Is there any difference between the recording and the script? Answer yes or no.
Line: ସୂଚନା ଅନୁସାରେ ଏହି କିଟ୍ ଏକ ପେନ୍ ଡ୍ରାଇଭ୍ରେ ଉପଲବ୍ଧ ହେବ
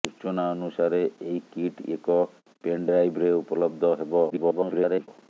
yes